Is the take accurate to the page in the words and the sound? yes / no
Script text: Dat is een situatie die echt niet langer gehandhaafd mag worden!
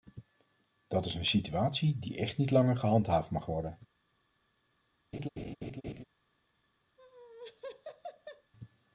no